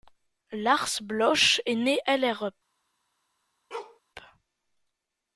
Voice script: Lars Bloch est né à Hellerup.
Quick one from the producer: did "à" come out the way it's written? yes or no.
no